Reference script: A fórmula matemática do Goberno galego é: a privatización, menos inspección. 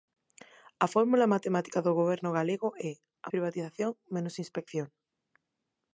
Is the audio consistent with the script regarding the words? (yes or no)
yes